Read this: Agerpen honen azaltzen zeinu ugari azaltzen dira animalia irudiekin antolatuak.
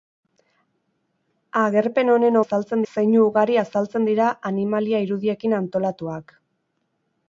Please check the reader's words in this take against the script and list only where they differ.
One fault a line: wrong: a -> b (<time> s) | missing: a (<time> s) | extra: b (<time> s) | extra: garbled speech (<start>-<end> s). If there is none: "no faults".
no faults